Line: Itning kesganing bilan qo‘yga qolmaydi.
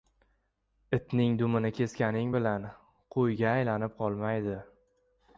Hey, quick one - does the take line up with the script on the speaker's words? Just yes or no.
no